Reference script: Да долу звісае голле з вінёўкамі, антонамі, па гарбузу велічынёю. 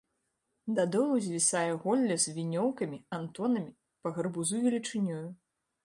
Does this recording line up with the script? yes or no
yes